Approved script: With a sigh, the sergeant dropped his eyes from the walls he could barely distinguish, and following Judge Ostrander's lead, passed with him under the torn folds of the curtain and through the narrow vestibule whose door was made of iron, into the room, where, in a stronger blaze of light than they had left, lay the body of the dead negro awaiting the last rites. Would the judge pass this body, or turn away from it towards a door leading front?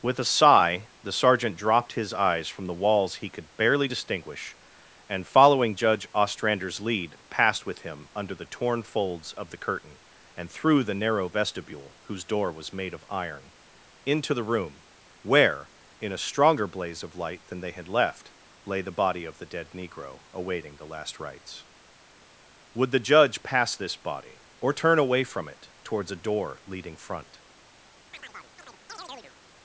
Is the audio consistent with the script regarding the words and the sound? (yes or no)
no